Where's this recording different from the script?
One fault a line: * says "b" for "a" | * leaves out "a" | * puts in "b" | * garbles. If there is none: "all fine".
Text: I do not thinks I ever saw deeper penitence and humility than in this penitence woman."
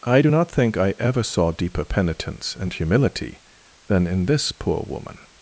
* says "think" for "thinks"
* says "poor" for "penitence"